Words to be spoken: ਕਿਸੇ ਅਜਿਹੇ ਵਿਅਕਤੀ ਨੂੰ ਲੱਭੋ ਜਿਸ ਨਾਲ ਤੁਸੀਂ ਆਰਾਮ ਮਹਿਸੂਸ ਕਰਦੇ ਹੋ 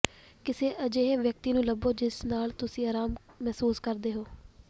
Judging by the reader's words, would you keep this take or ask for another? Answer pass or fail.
pass